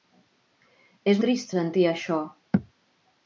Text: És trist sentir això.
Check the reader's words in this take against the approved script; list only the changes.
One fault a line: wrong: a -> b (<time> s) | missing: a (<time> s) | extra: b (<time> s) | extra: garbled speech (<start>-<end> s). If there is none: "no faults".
no faults